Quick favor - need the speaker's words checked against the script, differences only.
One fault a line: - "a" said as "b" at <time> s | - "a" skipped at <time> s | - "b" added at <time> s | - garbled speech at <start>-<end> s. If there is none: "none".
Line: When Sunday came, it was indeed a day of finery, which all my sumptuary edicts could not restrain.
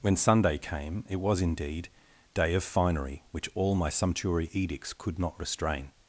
- "a" skipped at 1.9 s